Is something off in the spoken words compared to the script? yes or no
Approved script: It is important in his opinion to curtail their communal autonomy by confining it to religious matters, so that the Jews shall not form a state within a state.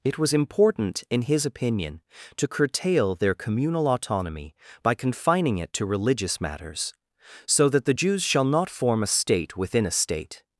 yes